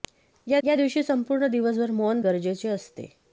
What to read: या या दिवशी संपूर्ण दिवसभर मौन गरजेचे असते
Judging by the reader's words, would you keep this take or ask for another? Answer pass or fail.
pass